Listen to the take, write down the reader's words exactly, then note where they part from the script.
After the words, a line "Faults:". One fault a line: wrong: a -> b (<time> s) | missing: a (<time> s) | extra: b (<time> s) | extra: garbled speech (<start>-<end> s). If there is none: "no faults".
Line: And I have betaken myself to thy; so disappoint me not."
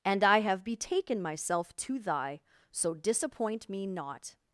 And I have betaken myself to thy; so disappoint me not."
Faults:
no faults